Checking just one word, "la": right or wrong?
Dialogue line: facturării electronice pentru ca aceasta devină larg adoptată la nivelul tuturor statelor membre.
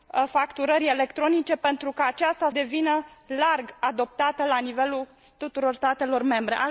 right